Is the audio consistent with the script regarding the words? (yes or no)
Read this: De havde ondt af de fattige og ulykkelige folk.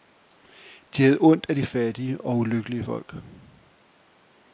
yes